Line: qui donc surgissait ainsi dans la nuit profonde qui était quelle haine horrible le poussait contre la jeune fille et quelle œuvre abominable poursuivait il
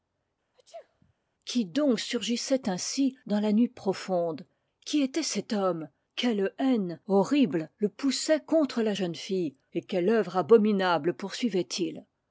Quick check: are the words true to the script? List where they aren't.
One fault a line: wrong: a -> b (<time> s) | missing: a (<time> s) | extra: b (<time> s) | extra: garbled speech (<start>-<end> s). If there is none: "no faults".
extra: cet homme (5.2 s)